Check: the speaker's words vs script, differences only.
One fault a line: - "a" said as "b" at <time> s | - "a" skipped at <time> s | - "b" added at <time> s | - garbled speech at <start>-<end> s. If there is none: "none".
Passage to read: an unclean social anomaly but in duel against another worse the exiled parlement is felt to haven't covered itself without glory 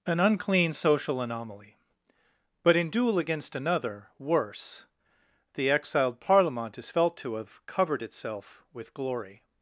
- "haven't" said as "have" at 7.3 s
- "without" said as "with" at 8.7 s